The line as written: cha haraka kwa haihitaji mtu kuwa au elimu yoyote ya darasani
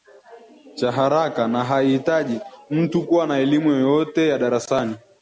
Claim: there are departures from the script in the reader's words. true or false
true